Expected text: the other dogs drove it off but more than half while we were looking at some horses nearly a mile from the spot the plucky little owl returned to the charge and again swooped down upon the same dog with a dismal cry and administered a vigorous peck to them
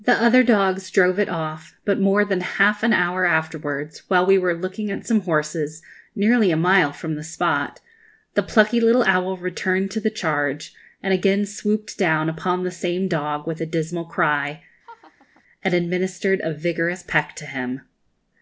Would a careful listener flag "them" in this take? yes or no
yes